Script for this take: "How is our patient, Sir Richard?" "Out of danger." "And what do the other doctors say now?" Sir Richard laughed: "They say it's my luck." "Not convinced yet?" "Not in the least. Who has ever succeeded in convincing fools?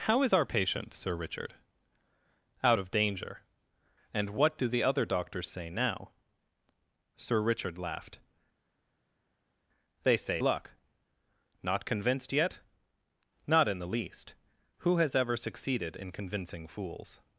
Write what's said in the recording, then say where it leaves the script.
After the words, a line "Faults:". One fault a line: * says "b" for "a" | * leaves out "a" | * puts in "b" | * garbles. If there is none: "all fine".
"How is our patient, Sir Richard?" "Out of danger." "And what do the other doctors say now?" Sir Richard laughed: "They say luck." "Not convinced yet?" "Not in the least. Who has ever succeeded in convincing fools?
Faults:
* leaves out "it's my"